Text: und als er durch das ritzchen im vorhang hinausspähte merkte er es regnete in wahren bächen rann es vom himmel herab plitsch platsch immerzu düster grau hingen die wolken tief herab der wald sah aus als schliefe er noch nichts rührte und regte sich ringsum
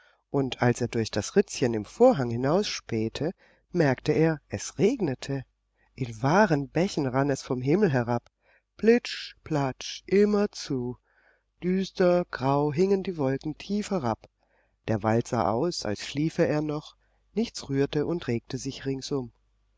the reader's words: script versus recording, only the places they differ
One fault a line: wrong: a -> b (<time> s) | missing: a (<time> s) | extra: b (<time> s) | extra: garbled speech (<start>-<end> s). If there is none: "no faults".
no faults